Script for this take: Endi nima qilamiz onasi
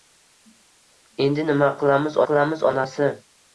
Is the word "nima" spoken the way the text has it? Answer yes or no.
yes